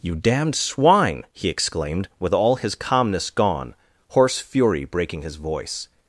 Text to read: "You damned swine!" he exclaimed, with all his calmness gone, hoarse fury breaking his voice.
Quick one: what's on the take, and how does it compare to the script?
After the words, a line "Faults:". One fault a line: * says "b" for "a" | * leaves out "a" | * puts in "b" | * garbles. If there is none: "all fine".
"You damned swine!" he exclaimed, with all his calmness gone, hoarse fury breaking his voice.
Faults:
all fine